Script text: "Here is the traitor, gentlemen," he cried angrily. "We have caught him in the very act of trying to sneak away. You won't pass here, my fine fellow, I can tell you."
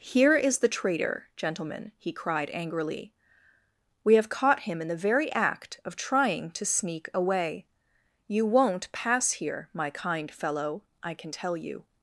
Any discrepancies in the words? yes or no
yes